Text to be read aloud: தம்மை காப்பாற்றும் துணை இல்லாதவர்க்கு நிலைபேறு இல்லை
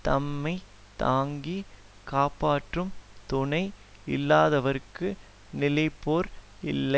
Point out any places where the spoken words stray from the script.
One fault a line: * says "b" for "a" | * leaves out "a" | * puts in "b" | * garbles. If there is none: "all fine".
* puts in "தாங்கி"